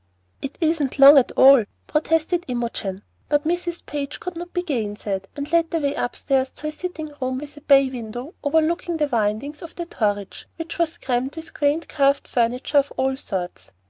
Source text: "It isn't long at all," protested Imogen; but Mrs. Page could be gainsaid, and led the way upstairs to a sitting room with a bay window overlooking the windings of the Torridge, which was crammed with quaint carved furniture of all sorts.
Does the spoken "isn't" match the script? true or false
true